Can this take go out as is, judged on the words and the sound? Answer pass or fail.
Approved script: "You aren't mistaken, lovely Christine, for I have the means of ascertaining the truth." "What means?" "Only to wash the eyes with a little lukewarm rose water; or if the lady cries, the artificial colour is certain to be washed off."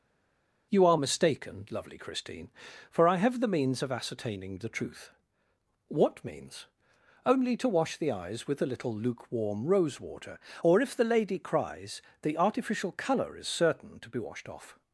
fail